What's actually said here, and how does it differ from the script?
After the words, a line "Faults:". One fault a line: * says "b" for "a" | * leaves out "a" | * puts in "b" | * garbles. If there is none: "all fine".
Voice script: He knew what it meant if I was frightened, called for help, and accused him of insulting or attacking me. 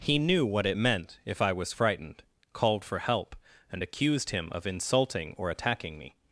He knew what it meant if I was frightened, called for help, and accused him of insulting or attacking me.
Faults:
all fine